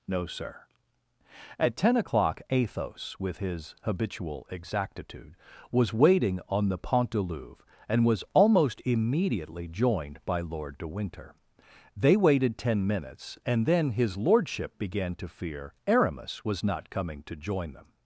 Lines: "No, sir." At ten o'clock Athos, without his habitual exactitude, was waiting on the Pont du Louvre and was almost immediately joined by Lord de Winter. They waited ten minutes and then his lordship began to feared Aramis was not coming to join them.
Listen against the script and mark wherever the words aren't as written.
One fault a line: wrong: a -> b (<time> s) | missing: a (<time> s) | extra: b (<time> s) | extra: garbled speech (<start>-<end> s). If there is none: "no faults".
wrong: without -> with (3.2 s)
wrong: feared -> fear (15.3 s)